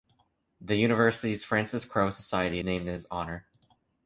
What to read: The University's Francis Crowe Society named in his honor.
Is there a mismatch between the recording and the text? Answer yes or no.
no